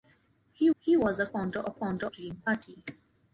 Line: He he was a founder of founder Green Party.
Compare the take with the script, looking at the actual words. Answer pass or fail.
pass